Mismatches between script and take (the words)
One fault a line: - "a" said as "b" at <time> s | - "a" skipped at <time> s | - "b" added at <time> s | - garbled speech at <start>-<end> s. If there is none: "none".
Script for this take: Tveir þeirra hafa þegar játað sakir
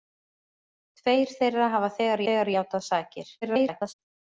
- "þegar" added at 2.3 s
- garbled speech at 3.4-3.9 s